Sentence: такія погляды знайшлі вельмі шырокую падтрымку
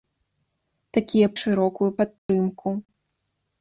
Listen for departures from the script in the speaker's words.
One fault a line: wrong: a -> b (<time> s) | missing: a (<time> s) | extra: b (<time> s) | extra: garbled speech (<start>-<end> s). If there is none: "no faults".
missing: погляды знайшлі вельмі (1.3 s)